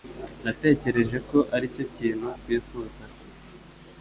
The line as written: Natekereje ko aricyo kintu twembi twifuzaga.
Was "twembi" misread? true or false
true